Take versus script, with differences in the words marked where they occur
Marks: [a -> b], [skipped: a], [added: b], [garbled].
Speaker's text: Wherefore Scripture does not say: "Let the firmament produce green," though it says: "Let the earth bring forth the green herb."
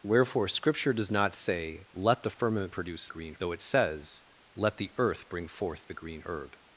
Wherefore Scripture does not say: "Let the firmament produce green," though it says: "Let the earth bring forth the green herb."